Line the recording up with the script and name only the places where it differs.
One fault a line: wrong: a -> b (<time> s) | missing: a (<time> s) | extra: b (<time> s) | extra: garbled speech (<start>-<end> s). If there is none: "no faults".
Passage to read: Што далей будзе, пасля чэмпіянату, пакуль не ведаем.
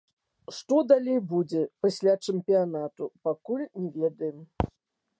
no faults